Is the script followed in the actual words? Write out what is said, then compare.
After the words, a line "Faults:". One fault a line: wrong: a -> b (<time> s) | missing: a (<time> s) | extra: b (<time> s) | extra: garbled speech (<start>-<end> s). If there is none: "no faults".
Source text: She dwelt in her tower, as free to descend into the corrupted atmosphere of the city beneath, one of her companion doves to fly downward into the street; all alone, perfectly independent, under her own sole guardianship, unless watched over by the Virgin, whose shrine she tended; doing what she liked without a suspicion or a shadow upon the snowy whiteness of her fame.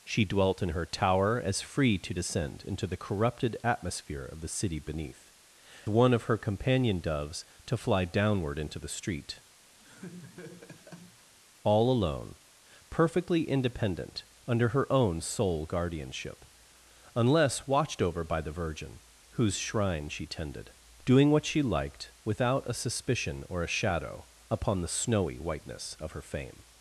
She dwelt in her tower, as free to descend into the corrupted atmosphere of the city beneath, one of her companion doves to fly downward into the street; all alone, perfectly independent, under her own sole guardianship, unless watched over by the Virgin, whose shrine she tended; doing what she liked without a suspicion or a shadow upon the snowy whiteness of her fame.
Faults:
no faults